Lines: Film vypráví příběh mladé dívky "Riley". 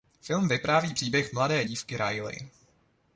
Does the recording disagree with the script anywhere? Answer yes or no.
no